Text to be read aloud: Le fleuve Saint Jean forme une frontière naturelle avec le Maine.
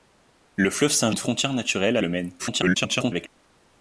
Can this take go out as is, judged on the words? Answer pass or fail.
fail